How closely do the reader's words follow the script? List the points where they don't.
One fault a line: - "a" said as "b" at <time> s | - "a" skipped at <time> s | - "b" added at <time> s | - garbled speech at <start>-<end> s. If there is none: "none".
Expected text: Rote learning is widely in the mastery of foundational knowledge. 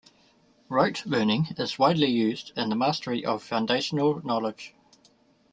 - "used" added at 2.1 s